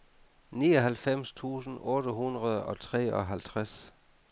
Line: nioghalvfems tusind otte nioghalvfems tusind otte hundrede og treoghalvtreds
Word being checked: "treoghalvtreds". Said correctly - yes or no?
yes